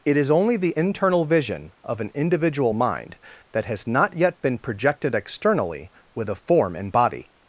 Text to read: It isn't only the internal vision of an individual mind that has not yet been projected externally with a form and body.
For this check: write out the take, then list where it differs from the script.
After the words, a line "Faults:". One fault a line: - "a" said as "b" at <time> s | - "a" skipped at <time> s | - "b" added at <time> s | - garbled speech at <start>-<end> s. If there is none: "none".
It is only the internal vision of an individual mind that has not yet been projected externally with a form and body.
Faults:
- "isn't" said as "is" at 0.2 s